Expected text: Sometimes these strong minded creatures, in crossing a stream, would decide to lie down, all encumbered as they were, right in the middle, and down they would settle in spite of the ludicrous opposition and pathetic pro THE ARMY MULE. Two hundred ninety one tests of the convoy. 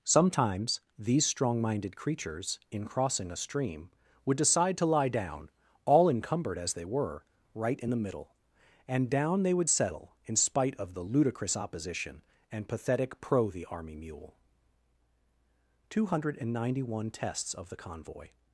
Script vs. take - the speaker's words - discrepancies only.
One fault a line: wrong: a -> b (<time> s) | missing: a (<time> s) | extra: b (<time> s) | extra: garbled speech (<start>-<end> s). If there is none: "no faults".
no faults